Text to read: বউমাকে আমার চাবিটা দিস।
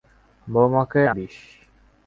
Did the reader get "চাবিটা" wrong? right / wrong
wrong